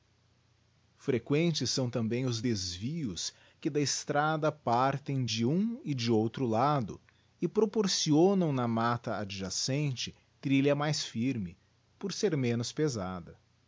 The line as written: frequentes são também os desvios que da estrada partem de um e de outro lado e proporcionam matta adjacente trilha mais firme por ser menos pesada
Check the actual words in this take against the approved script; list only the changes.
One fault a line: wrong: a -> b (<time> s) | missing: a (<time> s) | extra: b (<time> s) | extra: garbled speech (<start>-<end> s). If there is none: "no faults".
extra: na (8.5 s)